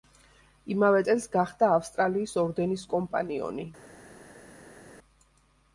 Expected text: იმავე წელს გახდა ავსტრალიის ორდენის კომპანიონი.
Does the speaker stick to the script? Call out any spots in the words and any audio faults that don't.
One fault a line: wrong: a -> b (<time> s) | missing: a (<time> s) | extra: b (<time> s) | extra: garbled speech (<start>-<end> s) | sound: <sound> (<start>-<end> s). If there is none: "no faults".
no faults